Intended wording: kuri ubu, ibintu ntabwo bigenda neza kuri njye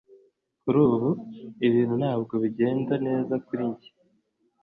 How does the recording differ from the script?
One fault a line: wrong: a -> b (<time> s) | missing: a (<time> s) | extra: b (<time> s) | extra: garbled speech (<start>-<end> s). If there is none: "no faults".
no faults